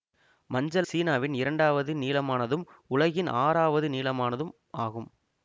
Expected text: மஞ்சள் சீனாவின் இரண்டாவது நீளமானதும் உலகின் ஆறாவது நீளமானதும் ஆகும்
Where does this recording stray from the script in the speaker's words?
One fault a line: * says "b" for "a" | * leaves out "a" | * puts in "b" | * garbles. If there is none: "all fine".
all fine